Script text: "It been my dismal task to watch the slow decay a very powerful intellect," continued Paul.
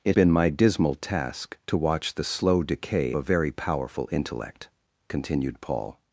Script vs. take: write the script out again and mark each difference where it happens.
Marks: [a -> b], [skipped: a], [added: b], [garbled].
"It been my dismal task to watch the slow decay a very powerful intellect," continued Paul.